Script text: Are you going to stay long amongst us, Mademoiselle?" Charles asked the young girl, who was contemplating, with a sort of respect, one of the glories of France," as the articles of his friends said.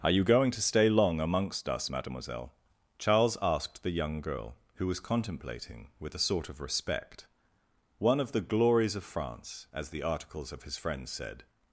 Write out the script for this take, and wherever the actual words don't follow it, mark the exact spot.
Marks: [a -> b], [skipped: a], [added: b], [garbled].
Are you going to stay long amongst us, Mademoiselle?" Charles asked the young girl, who was contemplating, with a sort of respect, one of the glories of France," as the articles of his friends said.